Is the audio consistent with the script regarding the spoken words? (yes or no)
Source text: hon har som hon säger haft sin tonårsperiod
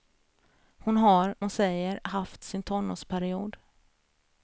no